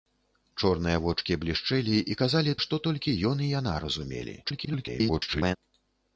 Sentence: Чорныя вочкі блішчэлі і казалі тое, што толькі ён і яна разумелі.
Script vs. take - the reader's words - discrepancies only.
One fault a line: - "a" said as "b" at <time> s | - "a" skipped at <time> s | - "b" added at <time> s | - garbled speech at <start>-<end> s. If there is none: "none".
- "тое" skipped at 2.6 s
- garbled speech at 4.4-5.6 s